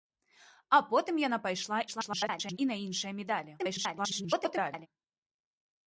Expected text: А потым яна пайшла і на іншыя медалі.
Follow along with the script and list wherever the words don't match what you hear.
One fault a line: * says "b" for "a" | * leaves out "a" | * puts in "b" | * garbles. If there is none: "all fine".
* garbles
* garbles